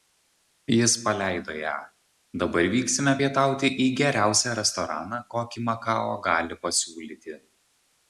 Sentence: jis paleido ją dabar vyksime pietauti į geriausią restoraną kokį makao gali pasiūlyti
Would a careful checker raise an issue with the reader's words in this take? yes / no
no